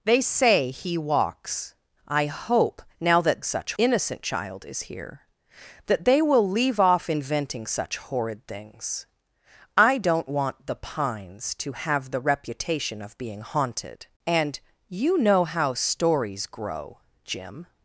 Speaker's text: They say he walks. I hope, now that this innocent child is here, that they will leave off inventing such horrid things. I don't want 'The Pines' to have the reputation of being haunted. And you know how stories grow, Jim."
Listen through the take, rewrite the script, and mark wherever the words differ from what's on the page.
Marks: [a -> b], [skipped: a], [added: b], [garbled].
They say he walks. I hope, now that [this -> such] innocent child is here, that they will leave off inventing such horrid things. I don't want 'The Pines' to have the reputation of being haunted. And you know how stories grow, Jim."